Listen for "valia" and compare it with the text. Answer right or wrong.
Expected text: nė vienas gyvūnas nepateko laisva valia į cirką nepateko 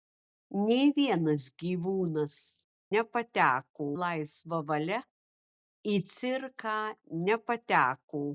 right